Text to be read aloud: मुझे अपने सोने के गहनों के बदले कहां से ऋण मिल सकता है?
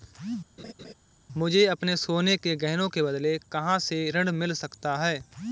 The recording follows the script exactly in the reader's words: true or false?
true